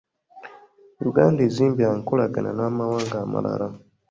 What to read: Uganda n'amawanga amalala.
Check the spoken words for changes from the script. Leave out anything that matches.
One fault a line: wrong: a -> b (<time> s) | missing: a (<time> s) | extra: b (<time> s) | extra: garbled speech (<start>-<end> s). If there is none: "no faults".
extra: ezimbye enkolagana (1.5 s)